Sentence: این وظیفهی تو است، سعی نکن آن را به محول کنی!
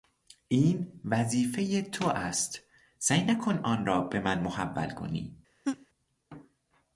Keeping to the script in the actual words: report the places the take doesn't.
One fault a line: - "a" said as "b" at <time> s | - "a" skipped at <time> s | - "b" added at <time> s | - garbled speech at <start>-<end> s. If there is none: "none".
- "من" added at 4.2 s